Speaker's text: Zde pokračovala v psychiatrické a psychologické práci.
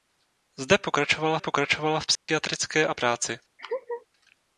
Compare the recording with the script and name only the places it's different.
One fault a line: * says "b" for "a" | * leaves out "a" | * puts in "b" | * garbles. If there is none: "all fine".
* puts in "pokračovala"
* leaves out "psychologické"